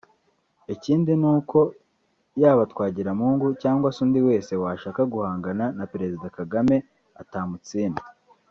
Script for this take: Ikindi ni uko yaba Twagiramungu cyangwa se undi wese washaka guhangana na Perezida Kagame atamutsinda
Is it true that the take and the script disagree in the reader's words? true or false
false